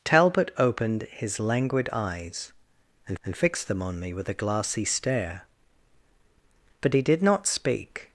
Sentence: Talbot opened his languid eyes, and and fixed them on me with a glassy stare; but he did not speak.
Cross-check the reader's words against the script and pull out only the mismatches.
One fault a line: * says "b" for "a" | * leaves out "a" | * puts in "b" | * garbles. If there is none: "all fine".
all fine